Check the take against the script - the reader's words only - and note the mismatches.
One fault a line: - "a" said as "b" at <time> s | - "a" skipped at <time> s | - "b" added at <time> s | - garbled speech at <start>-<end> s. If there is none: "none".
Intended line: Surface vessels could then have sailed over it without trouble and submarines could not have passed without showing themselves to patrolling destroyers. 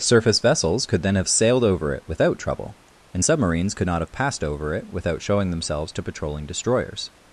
- "over it" added at 4.4 s